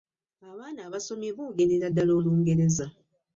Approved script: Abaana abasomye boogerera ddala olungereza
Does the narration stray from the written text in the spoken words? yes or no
no